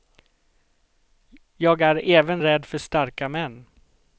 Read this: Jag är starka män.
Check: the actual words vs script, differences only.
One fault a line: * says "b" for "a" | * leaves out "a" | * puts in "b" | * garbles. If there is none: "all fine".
* puts in "även rädd för"